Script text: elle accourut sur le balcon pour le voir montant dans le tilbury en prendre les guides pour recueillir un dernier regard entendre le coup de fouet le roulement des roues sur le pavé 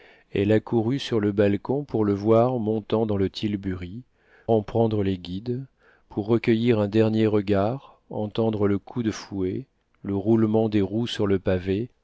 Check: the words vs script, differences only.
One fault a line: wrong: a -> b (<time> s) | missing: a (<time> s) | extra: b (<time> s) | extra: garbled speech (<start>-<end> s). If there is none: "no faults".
no faults